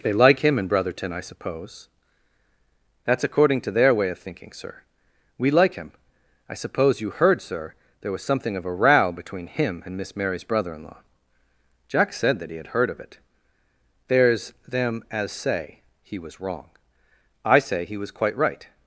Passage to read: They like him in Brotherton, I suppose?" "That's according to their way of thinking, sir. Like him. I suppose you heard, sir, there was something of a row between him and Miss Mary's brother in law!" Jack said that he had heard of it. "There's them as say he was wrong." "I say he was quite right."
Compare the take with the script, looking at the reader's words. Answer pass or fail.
fail